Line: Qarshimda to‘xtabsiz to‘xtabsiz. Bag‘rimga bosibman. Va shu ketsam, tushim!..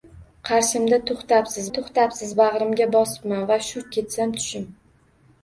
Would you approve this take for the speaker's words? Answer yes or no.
yes